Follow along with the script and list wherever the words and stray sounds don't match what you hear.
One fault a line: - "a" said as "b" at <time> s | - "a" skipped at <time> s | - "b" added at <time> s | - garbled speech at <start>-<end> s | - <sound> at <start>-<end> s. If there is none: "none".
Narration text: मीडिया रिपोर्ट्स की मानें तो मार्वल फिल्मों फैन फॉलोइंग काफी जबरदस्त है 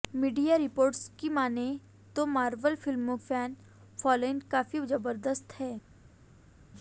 none